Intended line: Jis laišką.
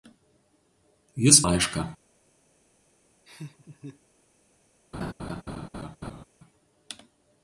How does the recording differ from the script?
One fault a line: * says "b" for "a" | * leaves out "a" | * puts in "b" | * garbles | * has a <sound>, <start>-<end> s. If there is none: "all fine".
* has a laugh, 3.3-4.0 s
* has a laugh, 4.9-6.3 s